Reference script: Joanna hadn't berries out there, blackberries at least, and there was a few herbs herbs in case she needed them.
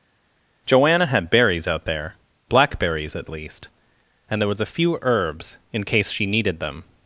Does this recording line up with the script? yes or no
no